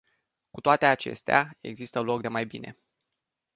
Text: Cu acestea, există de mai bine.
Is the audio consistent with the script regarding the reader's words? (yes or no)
no